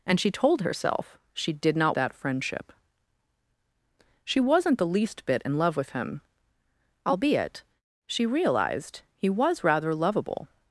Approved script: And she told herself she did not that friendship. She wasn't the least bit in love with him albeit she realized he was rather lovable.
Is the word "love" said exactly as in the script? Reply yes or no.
yes